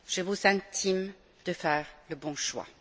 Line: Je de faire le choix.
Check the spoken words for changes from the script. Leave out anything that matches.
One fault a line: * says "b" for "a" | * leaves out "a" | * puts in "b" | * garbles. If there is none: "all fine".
* puts in "vous intime"
* puts in "bon"